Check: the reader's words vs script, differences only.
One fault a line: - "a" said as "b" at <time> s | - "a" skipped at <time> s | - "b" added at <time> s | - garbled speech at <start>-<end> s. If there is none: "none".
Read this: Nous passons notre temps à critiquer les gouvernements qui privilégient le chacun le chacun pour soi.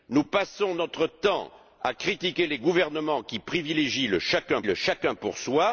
none